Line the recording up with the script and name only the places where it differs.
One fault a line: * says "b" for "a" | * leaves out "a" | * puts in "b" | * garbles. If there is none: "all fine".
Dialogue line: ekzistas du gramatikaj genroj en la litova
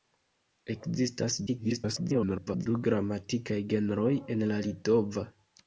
* garbles